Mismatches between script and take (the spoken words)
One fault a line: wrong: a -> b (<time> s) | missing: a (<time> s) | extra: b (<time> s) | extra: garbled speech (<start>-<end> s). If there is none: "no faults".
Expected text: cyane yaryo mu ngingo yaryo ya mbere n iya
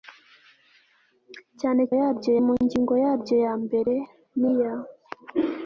no faults